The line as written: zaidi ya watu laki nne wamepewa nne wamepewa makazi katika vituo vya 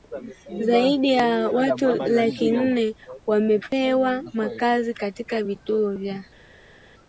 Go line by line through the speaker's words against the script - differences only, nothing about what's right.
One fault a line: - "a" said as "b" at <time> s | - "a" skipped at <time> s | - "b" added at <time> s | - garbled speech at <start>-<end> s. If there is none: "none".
- "nne wamepewa" skipped at 4.2 s